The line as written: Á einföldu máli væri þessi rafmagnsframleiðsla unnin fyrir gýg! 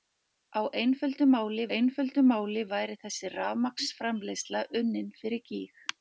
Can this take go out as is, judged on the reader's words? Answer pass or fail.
fail